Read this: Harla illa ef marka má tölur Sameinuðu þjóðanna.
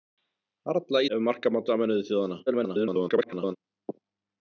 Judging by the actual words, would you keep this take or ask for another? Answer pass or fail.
fail